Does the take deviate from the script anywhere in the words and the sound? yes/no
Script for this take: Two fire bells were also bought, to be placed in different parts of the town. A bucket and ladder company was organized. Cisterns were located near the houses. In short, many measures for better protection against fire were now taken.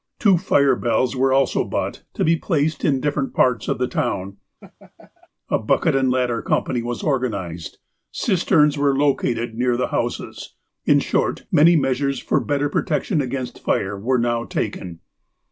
yes